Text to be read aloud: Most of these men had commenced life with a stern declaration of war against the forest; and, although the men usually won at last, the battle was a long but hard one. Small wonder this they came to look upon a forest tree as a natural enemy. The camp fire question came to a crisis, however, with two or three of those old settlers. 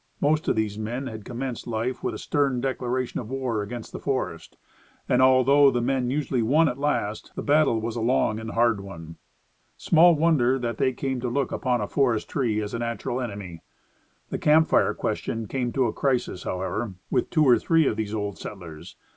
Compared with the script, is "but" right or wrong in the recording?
wrong